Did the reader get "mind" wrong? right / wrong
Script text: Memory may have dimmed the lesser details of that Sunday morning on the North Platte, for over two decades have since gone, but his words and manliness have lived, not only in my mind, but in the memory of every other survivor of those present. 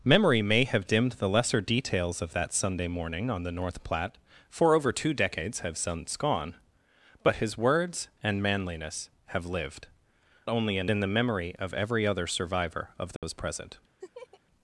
wrong